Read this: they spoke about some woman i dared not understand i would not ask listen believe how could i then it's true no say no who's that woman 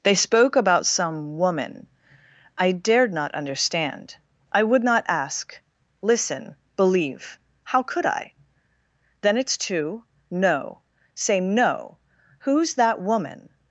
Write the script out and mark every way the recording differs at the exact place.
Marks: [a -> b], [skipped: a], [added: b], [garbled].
they spoke about some woman i dared not understand i would not ask listen believe how could i then it's [true -> two] no say no who's that woman